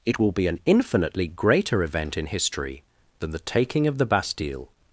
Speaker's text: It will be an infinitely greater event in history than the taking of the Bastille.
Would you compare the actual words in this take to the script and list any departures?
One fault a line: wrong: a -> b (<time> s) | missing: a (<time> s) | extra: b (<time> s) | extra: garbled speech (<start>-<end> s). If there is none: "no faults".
no faults